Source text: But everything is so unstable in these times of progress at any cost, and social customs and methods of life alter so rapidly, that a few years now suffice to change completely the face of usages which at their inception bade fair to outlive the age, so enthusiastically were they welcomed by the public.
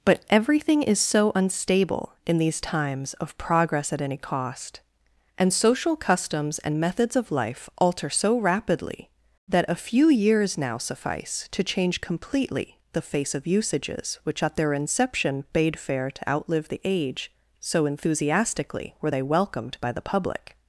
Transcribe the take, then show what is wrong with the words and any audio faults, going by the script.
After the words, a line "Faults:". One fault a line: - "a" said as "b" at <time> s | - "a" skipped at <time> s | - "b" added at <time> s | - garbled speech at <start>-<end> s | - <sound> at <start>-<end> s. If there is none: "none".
But everything is so unstable in these times of progress at any cost, and social customs and methods of life alter so rapidly, that a few years now suffice to change completely the face of usages which at their inception bade fair to outlive the age, so enthusiastically were they welcomed by the public.
Faults:
none